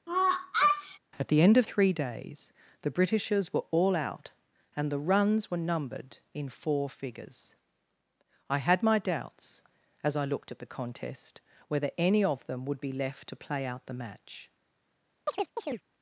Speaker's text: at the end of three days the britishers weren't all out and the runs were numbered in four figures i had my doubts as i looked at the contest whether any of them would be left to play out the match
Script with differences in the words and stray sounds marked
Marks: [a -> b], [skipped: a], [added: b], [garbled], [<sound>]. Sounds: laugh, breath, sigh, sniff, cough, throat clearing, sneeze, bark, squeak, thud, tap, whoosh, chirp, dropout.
[sneeze] at the end of three days the britishers [weren't -> were] all out and the runs were numbered in four figures i had my doubts as i looked at the contest whether any of them would be left to play out the match [chirp]